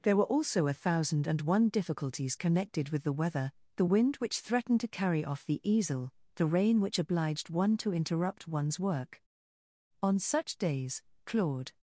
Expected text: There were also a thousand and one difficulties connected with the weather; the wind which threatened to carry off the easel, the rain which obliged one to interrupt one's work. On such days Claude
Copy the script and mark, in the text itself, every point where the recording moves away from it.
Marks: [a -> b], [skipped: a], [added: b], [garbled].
There were also a thousand and one difficulties connected with the weather; the wind which threatened to carry off the easel, the rain which obliged one to interrupt one's work. On such days Claude